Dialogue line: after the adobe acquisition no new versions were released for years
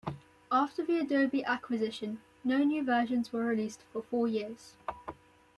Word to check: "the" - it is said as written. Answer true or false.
true